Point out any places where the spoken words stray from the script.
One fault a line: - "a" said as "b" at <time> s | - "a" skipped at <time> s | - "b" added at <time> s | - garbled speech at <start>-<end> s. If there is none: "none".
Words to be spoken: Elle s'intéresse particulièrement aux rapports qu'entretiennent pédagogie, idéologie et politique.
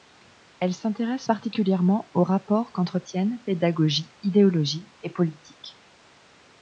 none